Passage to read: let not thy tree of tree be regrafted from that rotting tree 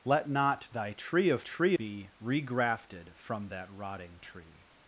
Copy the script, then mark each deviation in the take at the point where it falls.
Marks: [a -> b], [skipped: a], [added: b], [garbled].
let not thy tree of tree be regrafted from that rotting tree